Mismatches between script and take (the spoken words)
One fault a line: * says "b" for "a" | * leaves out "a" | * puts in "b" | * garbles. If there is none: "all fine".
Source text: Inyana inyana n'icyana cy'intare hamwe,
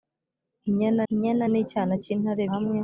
all fine